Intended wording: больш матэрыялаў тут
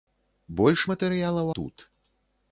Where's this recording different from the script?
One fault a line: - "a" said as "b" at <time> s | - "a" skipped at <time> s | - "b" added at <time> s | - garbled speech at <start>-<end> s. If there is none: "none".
none